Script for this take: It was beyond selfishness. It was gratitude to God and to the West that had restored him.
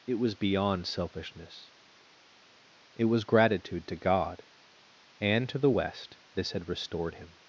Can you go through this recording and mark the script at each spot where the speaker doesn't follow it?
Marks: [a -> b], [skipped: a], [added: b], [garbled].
It was beyond selfishness. It was gratitude to God and to the West [that -> this] had restored him.